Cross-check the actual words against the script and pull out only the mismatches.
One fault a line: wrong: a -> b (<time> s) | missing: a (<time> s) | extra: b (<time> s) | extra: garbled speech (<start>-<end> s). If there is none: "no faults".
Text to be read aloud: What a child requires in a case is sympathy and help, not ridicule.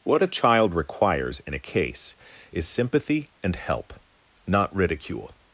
no faults